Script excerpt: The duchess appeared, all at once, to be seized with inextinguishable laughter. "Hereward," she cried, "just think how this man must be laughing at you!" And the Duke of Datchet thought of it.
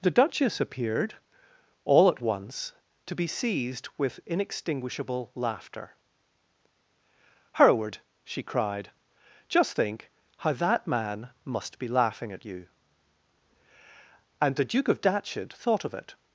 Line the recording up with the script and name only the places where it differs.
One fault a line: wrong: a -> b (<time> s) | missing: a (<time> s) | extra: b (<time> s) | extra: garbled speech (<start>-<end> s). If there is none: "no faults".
wrong: this -> that (10.5 s)